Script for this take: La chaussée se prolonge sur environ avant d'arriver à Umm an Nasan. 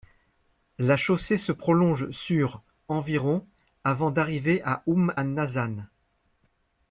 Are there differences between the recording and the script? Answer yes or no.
no